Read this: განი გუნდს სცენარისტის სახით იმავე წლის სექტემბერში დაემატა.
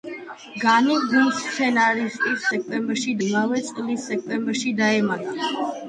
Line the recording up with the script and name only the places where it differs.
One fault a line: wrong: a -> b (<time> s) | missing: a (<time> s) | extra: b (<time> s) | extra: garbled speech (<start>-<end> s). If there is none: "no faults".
wrong: სახით -> სექტემბერში (2.6 s)